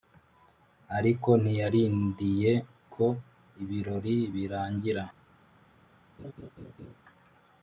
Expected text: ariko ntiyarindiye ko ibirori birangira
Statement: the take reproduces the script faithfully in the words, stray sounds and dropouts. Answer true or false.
false